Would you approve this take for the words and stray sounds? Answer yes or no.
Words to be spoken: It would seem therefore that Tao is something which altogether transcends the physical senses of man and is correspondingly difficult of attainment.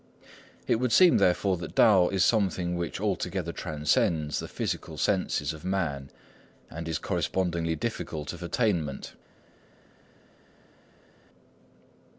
yes